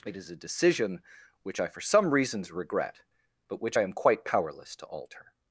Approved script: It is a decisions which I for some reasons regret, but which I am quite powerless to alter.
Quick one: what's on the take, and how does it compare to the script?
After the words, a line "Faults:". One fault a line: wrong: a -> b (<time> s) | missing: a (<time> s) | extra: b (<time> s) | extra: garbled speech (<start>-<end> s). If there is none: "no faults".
It is a decision which I for some reasons regret, but which I am quite powerless to alter.
Faults:
wrong: decisions -> decision (0.3 s)